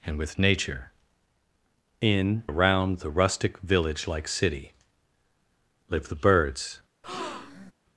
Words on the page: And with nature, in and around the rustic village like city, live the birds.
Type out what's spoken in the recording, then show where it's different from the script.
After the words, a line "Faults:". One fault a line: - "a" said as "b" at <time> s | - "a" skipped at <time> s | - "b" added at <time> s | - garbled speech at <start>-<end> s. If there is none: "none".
And with nature, in around the rustic village like city, live the birds.
Faults:
- "and" skipped at 2.4 s